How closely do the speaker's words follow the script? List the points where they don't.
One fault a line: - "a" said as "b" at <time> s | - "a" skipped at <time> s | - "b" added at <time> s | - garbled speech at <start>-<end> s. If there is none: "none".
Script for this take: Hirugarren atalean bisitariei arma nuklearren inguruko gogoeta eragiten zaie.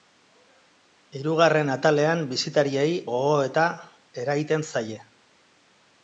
- "arma nuklearren inguruko" skipped at 2.9 s